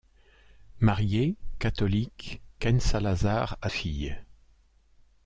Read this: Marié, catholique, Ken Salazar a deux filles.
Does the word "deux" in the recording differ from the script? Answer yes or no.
yes